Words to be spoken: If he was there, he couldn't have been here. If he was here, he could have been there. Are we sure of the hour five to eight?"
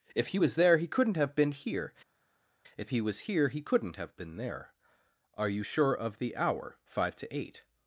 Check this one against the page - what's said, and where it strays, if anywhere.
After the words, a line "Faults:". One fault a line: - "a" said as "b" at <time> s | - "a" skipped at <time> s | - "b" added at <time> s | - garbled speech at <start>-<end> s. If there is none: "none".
If he was there, he couldn't have been here. If he was here, he couldn't have been there. Are you sure of the hour five to eight?"
Faults:
- "could" said as "couldn't" at 3.6 s
- "we" said as "you" at 5.5 s